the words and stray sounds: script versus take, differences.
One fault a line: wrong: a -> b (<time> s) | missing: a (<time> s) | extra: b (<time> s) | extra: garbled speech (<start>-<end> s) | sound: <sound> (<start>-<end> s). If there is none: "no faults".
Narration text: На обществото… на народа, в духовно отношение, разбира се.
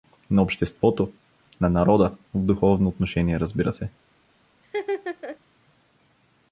sound: laugh (4.6-5.4 s)